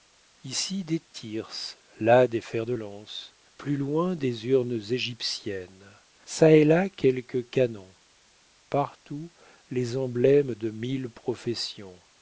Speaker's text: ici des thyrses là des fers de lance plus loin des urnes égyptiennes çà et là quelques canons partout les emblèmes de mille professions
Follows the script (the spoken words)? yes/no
yes